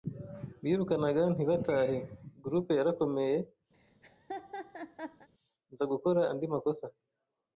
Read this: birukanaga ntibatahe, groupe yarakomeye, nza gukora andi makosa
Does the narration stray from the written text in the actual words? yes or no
no